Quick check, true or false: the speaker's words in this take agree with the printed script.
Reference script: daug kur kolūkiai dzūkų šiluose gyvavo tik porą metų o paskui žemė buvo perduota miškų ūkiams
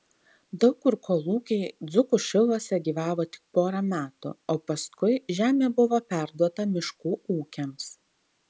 true